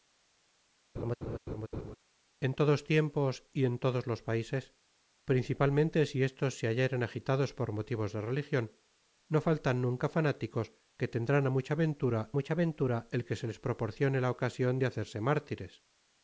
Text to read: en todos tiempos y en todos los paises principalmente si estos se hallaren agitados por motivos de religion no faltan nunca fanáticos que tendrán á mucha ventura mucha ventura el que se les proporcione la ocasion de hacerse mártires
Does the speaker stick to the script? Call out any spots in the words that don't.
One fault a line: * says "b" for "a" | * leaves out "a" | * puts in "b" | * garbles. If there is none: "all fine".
all fine